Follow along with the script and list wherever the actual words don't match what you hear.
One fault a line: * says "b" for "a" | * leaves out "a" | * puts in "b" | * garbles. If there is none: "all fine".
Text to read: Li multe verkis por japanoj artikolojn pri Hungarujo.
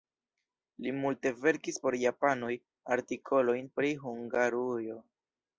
all fine